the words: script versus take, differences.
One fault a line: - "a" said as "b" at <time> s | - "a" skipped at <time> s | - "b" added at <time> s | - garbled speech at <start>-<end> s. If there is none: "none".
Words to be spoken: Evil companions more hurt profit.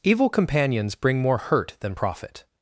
- "bring" added at 0.9 s
- "than" added at 1.8 s